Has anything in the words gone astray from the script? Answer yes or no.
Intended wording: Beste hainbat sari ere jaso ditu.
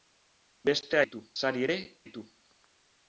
yes